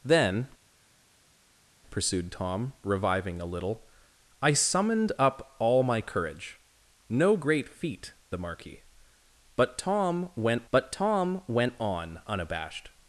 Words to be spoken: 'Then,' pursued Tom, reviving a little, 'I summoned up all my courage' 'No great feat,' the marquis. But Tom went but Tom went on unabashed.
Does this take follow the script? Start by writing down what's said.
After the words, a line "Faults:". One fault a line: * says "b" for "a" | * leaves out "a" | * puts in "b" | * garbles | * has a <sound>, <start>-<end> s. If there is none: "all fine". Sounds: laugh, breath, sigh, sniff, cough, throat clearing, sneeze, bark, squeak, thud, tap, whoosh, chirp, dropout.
'Then,' pursued Tom, reviving a little, 'I summoned up all my courage' 'No great feat,' the marquis. But Tom went but Tom went on unabashed.
Faults:
all fine